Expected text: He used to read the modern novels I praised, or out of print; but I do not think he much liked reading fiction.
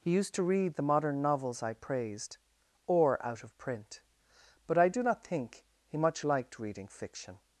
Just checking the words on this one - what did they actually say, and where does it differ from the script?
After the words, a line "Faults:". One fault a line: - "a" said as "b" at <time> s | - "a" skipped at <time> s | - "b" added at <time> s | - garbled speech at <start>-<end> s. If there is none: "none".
He used to read the modern novels I praised, or out of print; but I do not think he much liked reading fiction.
Faults:
none